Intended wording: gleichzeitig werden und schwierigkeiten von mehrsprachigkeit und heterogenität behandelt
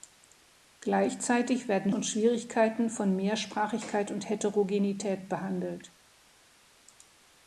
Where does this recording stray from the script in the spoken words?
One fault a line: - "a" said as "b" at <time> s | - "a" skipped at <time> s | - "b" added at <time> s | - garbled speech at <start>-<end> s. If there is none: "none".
none